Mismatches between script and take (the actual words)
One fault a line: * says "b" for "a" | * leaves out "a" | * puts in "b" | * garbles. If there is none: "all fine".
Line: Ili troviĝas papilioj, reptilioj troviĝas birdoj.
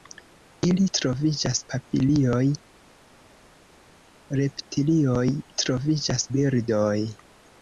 all fine